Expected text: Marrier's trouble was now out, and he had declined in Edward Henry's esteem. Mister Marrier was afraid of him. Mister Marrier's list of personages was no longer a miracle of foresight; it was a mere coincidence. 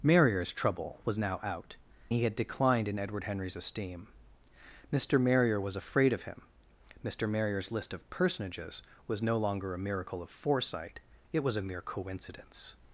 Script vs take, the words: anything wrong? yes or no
yes